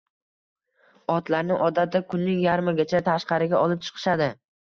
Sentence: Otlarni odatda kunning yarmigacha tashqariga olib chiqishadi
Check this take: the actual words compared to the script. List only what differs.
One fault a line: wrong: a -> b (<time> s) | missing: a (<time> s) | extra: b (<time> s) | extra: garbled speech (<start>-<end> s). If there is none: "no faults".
no faults